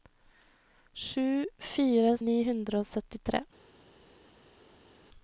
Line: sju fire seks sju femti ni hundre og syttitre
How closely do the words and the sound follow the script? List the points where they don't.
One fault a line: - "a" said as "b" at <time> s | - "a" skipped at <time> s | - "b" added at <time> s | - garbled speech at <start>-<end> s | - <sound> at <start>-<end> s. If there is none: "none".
- "seks sju femti" skipped at 2.1 s